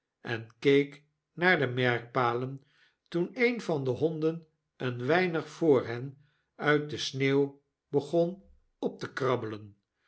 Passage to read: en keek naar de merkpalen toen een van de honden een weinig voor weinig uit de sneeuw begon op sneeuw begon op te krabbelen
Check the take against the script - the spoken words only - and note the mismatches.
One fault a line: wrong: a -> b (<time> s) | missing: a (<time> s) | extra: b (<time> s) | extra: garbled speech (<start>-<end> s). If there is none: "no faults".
wrong: weinig -> hen (5.9 s)
missing: sneeuw begon op (9.0 s)